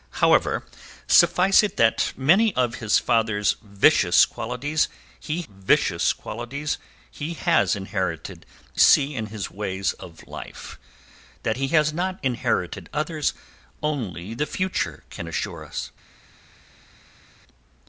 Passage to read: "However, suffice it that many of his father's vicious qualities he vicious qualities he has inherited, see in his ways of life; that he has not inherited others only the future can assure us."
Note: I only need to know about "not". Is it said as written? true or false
true